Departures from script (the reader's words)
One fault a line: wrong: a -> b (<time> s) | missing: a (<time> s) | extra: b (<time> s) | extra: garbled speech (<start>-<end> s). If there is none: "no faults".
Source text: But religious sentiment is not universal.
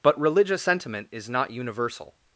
no faults